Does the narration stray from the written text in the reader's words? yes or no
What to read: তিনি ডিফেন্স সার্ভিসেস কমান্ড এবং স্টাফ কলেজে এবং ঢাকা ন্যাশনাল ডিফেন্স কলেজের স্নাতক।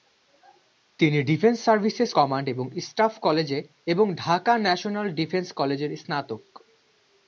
no